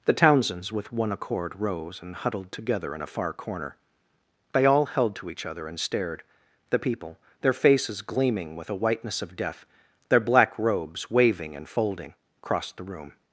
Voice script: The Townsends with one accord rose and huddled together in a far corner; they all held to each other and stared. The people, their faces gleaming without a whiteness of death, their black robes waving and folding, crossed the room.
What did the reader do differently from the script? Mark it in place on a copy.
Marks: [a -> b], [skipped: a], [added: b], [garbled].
The Townsends with one accord rose and huddled together in a far corner; they all held to each other and stared. The people, their faces gleaming [without -> with] a whiteness of death, their black robes waving and folding, crossed the room.